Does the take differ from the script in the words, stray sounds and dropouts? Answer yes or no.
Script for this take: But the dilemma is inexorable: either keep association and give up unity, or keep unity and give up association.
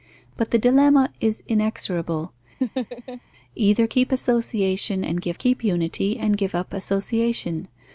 yes